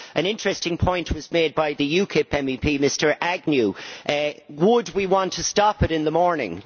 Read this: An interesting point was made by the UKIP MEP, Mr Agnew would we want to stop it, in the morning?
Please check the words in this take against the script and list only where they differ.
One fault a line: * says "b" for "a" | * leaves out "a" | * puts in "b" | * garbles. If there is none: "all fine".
all fine